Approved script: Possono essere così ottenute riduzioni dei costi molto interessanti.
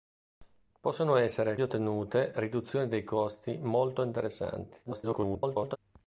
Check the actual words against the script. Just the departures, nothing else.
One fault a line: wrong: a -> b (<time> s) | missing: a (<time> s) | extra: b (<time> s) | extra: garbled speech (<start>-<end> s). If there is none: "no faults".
missing: così (1.6 s)
extra: garbled speech (4.8-5.8 s)